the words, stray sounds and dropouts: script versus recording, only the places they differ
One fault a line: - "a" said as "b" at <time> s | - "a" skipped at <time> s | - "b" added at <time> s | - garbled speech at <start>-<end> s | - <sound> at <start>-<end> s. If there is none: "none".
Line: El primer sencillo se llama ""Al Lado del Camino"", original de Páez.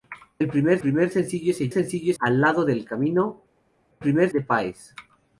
- "primer" added at 0.8 s
- "llama" said as "sencillo" at 1.7 s
- "original" said as "primer" at 4.0 s